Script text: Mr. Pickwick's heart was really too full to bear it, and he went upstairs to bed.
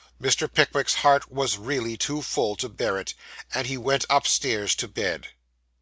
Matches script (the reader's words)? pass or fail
pass